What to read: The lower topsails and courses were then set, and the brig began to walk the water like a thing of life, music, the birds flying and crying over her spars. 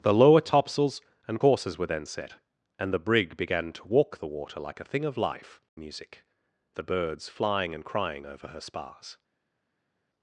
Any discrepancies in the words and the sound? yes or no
no